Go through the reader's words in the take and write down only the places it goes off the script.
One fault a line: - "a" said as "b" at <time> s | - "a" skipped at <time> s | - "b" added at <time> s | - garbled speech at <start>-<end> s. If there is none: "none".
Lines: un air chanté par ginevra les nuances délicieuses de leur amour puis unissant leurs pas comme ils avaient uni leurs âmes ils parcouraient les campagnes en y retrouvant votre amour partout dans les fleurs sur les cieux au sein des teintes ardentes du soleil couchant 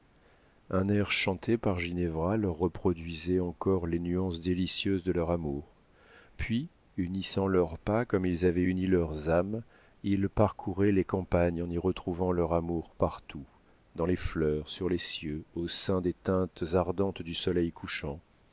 - "leur reproduisait encore" added at 2.4 s
- "votre" said as "leur" at 12.3 s